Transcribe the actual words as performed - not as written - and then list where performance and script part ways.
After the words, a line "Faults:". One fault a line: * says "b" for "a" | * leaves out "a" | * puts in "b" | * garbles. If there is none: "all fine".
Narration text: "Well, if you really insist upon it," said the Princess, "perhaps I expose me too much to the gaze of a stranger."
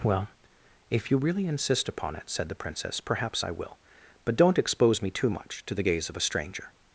"Well, if you really insist upon it," said the Princess, "perhaps I will; but don't expose me too much to the gaze of a stranger."
Faults:
* puts in "will but don't"